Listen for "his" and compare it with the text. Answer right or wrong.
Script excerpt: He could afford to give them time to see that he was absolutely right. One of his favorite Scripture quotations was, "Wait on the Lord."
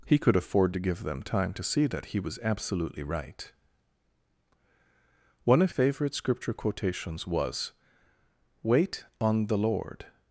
wrong